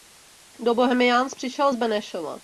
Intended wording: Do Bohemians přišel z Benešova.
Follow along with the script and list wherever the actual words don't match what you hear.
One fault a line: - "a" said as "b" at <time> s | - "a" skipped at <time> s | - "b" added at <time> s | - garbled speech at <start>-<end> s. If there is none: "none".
none